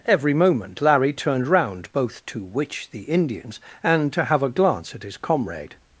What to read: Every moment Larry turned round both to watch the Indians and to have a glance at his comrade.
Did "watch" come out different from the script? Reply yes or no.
yes